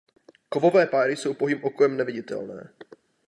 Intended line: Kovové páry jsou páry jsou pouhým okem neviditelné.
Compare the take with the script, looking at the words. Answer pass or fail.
fail